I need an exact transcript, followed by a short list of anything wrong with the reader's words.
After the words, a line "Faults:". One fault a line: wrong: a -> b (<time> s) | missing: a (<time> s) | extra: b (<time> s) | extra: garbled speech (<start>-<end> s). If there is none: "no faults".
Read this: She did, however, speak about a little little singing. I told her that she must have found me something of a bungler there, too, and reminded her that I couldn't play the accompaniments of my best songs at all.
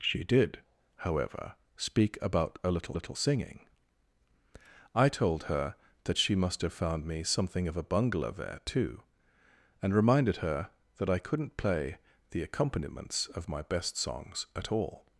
She did, however, speak about a little little singing. I told her that she must have found me something of a bungler there, too, and reminded her that I couldn't play the accompaniments of my best songs at all.
Faults:
no faults